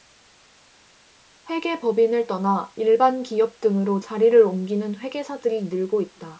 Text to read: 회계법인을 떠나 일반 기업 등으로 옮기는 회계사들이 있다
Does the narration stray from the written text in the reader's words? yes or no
yes